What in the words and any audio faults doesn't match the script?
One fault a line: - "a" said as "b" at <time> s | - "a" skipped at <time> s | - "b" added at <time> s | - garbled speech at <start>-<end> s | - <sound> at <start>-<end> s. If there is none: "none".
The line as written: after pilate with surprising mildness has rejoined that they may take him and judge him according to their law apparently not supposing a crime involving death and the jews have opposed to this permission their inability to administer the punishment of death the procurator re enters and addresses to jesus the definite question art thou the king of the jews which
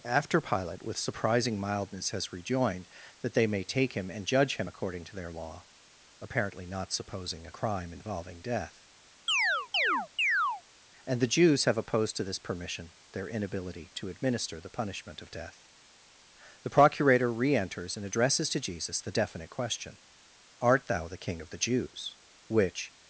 - chirp at 9.3-10.6 s